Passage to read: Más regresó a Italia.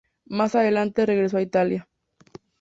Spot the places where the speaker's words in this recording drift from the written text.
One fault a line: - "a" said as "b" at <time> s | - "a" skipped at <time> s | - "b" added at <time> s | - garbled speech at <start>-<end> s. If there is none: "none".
- "adelante" added at 0.5 s